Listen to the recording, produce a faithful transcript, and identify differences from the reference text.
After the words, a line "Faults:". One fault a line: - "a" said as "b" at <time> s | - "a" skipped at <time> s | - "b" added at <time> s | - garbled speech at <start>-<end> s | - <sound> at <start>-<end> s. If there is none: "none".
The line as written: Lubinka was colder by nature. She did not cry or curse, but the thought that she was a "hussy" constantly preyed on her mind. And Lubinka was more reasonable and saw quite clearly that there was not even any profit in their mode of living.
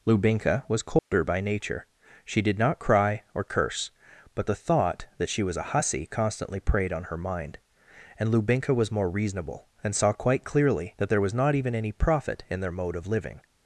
Lubinka was colder by nature. She did not cry or curse, but the thought that she was a "hussy" constantly preyed on her mind. And Lubinka was more reasonable and saw quite clearly that there was not even any profit in their mode of living.
Faults:
- dropout at 1.0-1.1 s